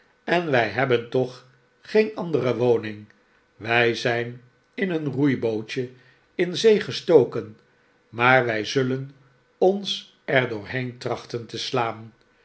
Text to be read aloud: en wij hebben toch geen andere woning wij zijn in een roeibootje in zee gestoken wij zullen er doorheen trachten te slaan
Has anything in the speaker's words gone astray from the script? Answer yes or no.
yes